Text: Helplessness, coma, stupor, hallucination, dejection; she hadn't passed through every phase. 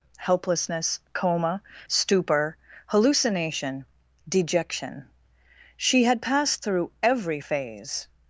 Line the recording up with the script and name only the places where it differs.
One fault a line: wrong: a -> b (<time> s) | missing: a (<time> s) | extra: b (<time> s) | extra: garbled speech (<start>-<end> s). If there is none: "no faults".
wrong: hadn't -> had (6.0 s)